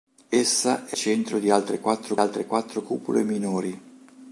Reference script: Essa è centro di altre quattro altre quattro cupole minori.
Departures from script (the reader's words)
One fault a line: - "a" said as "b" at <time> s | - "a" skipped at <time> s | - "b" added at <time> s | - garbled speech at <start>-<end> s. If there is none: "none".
none